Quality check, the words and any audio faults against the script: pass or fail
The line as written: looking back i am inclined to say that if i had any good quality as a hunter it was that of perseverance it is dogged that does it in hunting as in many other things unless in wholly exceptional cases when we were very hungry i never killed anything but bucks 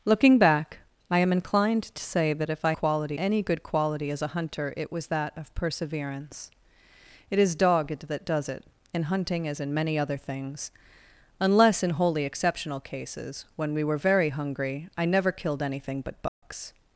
fail